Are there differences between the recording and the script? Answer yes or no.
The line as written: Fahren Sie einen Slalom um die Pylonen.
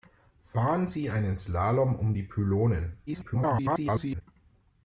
yes